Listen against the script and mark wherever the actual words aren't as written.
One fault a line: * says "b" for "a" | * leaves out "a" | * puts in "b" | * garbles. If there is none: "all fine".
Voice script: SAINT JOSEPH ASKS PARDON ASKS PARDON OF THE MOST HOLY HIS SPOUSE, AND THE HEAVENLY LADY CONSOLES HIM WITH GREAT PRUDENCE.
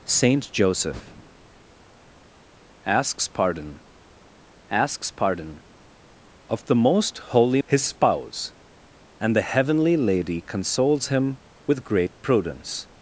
all fine